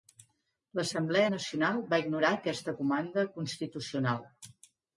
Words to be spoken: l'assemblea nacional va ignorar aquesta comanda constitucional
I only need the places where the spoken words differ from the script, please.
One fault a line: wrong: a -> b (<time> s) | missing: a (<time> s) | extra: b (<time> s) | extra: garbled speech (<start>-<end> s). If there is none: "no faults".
no faults